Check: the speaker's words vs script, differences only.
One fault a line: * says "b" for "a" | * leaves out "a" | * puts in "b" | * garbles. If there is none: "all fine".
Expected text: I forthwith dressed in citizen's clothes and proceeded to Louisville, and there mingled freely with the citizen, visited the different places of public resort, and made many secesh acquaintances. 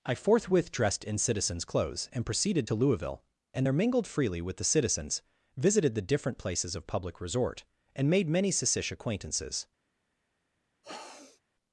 * says "citizens" for "citizen"